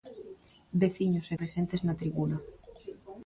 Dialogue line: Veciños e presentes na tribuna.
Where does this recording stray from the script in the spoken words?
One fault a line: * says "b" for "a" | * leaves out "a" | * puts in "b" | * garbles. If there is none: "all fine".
all fine